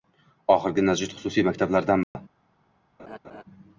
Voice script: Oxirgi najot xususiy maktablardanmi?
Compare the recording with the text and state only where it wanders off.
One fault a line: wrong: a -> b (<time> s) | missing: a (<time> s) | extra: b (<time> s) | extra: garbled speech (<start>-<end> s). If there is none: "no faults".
no faults